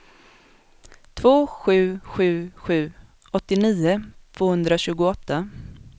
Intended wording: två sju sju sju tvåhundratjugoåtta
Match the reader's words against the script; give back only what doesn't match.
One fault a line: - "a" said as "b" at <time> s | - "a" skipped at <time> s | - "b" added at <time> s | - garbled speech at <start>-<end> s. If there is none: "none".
- "åttionio" added at 3.3 s